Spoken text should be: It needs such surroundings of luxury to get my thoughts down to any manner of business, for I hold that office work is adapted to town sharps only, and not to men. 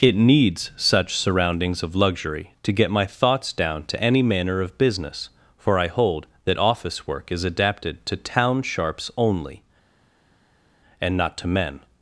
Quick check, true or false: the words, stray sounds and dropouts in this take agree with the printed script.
true